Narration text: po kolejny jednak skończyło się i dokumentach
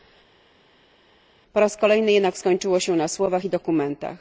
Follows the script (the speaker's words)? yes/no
no